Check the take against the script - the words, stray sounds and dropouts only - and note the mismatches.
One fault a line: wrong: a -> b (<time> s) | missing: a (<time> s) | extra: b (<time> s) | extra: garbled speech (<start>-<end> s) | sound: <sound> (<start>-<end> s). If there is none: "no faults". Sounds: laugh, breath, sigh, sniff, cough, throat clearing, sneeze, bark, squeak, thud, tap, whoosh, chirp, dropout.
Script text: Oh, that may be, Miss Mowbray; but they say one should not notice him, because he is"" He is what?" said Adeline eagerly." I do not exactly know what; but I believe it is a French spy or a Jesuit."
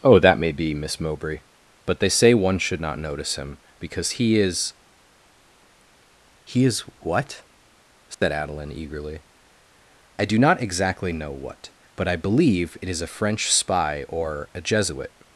sound: dropout (8.1-8.2 s)